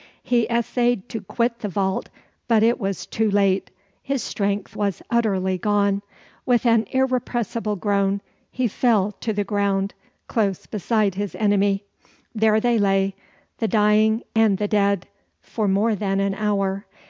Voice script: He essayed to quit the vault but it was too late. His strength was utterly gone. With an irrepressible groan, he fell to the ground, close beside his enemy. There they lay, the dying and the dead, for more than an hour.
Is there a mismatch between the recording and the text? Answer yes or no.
no